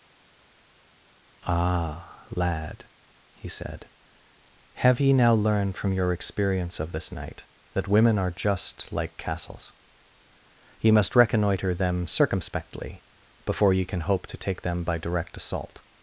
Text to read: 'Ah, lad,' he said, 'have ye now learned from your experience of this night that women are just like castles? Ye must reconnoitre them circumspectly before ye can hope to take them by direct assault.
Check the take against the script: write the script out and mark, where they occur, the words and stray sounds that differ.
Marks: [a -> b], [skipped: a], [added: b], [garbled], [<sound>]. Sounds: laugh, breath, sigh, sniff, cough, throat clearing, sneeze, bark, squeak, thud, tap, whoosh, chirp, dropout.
'Ah, lad,' he said, 'have ye now learned from your experience of this night that women are just like castles? Ye must reconnoitre them circumspectly before ye can hope to take them by direct assault.